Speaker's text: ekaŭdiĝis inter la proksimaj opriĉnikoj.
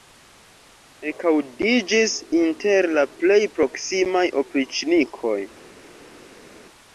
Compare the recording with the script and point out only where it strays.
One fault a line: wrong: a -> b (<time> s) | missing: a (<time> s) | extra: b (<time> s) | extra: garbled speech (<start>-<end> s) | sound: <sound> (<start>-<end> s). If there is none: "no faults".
extra: plej (3.2 s)